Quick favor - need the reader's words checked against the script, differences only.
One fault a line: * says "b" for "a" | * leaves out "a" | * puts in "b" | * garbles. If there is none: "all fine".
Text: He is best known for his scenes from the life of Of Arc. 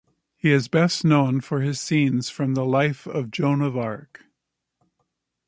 * puts in "Joan"